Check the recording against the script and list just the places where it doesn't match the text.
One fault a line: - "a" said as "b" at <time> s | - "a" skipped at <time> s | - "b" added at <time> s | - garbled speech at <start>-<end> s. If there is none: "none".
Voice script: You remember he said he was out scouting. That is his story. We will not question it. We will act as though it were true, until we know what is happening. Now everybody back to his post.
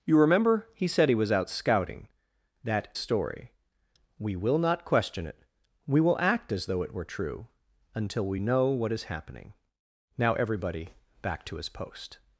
- "is his" skipped at 2.9 s